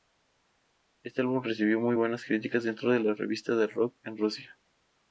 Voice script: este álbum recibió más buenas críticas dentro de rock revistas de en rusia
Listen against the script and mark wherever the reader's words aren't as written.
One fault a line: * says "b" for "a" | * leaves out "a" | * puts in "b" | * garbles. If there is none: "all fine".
* says "muy" for "más"
* says "las" for "rock"
* puts in "rock"